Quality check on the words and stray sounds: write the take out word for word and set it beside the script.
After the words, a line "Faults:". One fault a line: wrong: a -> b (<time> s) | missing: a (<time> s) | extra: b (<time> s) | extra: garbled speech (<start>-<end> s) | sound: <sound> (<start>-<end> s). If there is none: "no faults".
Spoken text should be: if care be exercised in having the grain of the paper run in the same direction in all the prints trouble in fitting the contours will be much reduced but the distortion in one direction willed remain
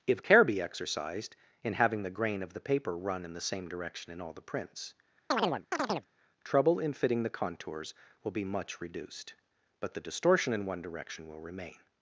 if care be exercised in having the grain of the paper run in the same direction in all the prints trouble in fitting the contours will be much reduced but the distortion in one direction will remain
Faults:
sound: chirp (5.3-6.1 s)
wrong: willed -> will (11.3 s)